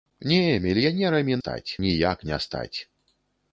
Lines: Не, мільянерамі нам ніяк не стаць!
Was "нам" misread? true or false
true